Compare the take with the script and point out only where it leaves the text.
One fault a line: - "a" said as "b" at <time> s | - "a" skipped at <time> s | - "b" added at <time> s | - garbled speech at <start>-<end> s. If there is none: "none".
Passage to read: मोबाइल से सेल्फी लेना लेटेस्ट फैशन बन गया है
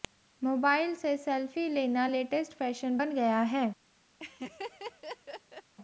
none